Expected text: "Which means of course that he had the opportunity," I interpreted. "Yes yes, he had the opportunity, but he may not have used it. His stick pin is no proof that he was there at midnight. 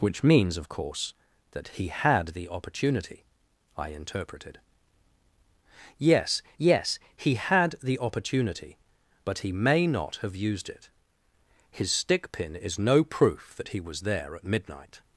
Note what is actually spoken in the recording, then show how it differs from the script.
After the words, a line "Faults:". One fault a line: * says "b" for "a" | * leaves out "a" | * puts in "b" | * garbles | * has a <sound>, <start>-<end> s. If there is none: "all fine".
"Which means of course that he had the opportunity," I interpreted. "Yes yes, he had the opportunity, but he may not have used it. His stick pin is no proof that he was there at midnight.
Faults:
all fine